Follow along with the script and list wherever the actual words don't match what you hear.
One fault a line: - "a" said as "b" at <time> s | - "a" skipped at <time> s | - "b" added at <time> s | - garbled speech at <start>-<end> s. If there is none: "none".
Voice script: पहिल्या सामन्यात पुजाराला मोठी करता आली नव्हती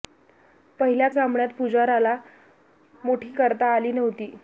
none